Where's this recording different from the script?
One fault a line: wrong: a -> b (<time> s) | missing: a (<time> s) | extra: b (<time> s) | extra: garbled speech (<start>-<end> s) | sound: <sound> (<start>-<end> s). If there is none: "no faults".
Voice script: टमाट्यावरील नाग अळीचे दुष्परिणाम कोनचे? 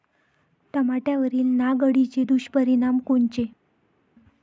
no faults